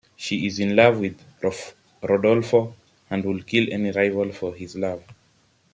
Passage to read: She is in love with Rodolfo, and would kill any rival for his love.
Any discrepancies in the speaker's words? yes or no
no